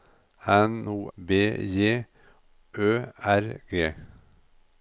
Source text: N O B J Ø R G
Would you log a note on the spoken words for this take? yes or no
no